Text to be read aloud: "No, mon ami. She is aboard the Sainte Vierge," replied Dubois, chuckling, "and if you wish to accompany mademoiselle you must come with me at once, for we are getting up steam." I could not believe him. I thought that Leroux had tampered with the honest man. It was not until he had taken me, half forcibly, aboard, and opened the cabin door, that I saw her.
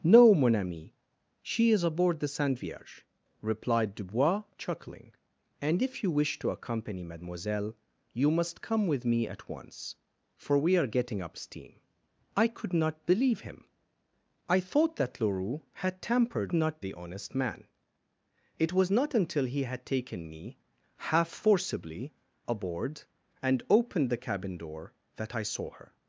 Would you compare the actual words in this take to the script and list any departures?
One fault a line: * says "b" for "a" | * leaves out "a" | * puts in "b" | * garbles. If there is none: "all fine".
* says "not" for "with"